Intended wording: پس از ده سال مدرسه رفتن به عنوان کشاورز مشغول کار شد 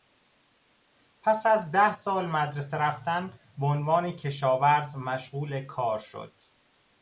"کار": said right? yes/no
yes